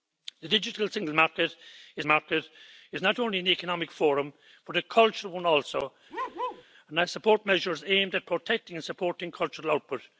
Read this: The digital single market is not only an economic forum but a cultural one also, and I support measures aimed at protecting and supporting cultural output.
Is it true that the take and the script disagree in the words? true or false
true